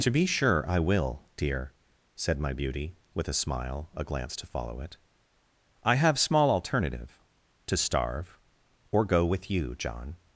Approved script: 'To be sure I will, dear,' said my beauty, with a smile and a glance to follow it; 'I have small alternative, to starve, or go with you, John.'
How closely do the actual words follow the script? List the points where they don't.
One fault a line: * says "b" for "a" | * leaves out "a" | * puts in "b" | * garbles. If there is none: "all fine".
* leaves out "and"